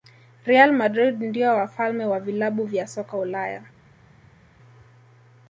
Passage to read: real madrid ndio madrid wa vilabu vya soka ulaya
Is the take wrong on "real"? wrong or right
right